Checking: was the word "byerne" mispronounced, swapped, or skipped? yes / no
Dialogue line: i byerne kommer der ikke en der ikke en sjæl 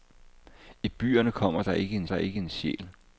no